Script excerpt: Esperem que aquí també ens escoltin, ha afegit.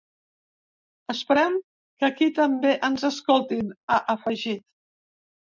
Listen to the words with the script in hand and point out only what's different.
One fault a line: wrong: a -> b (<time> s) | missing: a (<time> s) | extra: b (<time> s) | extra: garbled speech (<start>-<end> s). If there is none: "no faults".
no faults